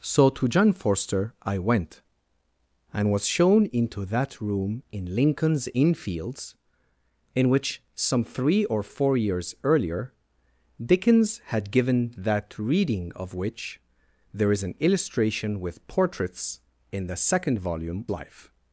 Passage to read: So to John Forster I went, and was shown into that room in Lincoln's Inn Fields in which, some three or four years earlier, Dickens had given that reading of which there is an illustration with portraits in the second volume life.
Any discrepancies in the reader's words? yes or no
no